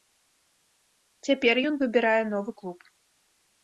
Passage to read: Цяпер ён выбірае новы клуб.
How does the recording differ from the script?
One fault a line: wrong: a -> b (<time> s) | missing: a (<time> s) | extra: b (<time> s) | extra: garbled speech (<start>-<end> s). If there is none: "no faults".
no faults